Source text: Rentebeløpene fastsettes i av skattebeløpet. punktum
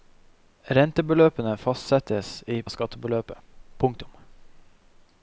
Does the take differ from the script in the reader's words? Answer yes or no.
no